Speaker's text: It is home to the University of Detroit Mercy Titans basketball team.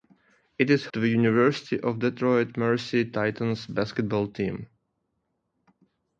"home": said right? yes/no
no